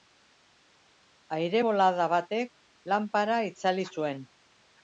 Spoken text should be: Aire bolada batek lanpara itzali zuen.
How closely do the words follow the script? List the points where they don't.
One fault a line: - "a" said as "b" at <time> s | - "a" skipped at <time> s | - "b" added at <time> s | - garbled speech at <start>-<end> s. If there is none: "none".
none